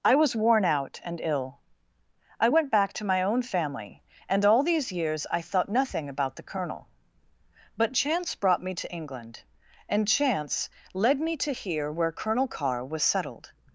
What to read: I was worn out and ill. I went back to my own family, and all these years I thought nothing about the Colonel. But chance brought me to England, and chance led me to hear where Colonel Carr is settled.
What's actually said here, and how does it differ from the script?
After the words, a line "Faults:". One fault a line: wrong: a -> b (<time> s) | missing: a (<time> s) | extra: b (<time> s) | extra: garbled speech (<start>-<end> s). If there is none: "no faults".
I was worn out and ill. I went back to my own family, and all these years I thought nothing about the Colonel. But chance brought me to England, and chance led me to hear where Colonel Carr was settled.
Faults:
wrong: is -> was (12.8 s)